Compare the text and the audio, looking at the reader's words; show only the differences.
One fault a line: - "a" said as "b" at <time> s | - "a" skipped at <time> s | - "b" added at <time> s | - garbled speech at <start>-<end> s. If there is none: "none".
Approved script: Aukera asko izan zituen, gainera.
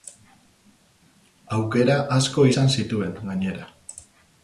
none